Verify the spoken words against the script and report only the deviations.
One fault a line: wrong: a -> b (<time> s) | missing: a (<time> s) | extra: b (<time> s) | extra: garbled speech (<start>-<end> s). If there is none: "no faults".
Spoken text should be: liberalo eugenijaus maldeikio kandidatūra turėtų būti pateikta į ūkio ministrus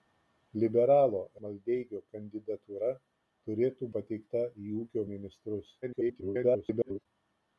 missing: eugenijaus (1.2 s)
missing: būti (3.9 s)
extra: garbled speech (5.8-7.1 s)